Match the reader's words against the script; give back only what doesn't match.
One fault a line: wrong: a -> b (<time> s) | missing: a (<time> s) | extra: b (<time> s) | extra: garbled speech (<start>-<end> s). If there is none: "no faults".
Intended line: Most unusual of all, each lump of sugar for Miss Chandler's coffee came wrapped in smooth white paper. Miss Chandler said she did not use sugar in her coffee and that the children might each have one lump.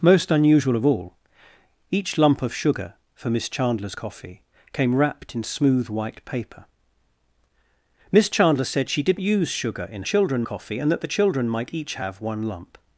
missing: not (9.2 s)
wrong: her -> children (10.0 s)